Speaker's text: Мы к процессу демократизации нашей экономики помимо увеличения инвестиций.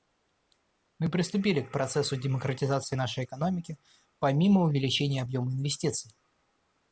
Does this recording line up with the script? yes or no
no